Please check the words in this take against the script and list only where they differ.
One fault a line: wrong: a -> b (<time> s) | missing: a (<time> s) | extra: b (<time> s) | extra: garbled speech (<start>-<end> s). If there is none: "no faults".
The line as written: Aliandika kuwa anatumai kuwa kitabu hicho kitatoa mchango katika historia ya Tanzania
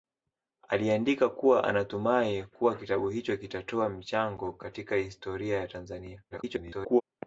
extra: garbled speech (6.3-7.0 s)